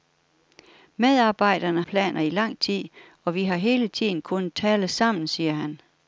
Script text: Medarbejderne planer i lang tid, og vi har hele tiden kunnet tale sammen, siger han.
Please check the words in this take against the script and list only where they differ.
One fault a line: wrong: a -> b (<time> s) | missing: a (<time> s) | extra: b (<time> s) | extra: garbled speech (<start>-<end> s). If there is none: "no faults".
no faults